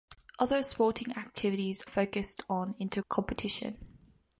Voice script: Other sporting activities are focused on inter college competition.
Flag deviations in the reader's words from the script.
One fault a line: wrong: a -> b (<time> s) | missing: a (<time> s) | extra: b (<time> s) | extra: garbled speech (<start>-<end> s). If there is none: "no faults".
missing: are (1.8 s)
missing: college (3.0 s)